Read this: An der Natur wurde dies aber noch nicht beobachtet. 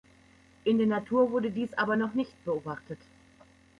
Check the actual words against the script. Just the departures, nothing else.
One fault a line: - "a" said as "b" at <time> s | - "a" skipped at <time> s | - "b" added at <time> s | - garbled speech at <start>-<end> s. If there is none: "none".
- "An" said as "In" at 0.6 s